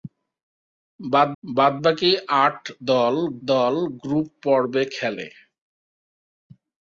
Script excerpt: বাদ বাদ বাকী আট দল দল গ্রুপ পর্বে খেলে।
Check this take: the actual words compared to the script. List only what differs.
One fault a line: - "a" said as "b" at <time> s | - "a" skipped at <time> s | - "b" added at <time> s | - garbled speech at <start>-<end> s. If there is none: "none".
none